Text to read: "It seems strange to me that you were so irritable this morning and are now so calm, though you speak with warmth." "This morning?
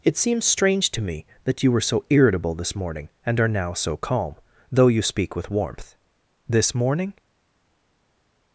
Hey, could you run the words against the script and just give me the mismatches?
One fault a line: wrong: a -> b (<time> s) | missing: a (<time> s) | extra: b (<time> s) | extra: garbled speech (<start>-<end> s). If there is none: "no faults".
no faults